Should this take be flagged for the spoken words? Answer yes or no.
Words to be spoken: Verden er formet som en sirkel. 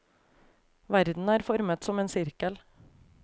no